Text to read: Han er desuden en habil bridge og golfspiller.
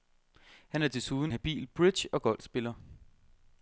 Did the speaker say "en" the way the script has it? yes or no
no